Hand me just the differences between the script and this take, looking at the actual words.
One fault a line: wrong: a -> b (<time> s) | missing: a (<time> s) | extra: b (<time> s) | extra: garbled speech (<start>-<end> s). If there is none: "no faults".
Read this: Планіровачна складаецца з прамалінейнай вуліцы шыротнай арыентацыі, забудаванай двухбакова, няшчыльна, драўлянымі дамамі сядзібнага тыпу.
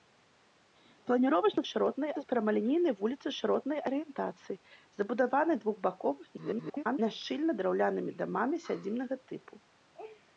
wrong: складаецца -> шыротнай (1.7 s)
extra: garbled speech (6.4-7.0 s)